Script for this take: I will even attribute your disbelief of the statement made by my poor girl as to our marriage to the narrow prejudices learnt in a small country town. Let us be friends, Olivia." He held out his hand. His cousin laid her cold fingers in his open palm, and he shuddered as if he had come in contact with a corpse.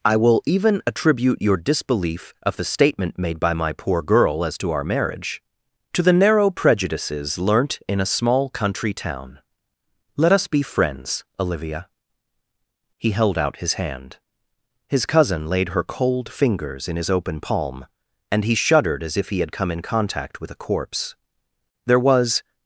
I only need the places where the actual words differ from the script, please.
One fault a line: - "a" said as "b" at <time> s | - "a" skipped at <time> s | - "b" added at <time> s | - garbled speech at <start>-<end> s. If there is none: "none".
- "There was" added at 21.9 s